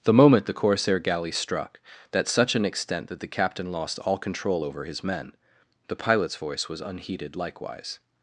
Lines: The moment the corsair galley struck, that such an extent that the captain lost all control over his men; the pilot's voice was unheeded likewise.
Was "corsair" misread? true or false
false